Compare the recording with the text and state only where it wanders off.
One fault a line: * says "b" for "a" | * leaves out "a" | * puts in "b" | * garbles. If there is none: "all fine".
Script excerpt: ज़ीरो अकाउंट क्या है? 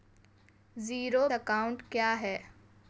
all fine